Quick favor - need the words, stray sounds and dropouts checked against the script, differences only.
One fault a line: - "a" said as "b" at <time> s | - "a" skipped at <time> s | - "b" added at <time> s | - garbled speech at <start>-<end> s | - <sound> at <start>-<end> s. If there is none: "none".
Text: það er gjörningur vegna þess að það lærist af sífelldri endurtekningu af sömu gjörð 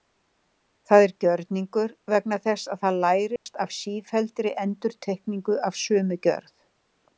- dropout at 3.4-3.5 s